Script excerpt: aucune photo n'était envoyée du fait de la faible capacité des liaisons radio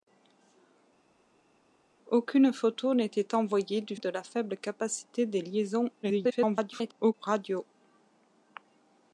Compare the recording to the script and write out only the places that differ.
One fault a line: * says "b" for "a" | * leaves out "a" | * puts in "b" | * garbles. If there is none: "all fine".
* leaves out "fait"
* garbles